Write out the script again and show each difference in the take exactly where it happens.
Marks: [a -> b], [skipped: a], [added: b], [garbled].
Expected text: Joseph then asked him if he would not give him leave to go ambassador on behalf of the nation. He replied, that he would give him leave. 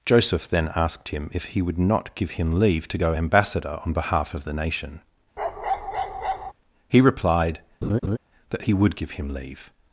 Joseph then asked him if he would not give him leave to go ambassador on behalf of the nation. He replied, that he would give him leave.